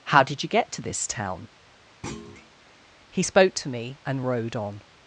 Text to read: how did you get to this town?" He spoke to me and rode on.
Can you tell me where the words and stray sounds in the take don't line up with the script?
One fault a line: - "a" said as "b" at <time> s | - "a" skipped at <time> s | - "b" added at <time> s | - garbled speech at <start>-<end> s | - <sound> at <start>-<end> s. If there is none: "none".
- thud at 2.0-2.5 s